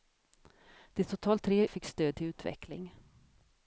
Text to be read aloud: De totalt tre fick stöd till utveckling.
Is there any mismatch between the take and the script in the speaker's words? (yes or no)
no